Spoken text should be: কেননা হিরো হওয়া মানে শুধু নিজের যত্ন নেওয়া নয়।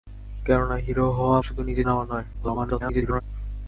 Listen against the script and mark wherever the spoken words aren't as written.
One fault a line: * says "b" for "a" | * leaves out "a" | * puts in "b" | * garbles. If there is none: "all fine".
* leaves out "মানে"
* leaves out "যত্ন"
* garbles